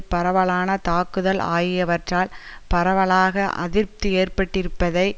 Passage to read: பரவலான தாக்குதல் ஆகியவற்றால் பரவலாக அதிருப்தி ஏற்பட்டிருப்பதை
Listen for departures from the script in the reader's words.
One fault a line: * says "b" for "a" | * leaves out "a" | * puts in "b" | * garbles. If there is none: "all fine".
all fine